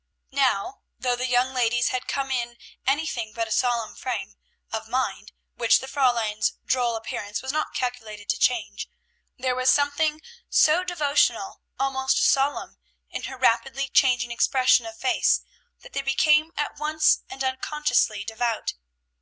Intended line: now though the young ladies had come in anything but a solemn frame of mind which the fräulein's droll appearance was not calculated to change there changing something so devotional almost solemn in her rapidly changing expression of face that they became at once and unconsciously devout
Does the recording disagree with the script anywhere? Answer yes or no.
yes